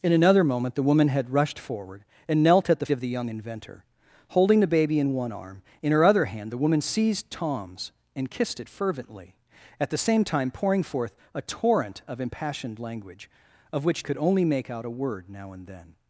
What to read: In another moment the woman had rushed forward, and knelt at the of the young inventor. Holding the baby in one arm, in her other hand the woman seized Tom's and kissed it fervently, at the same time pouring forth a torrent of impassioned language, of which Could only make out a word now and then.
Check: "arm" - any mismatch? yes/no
no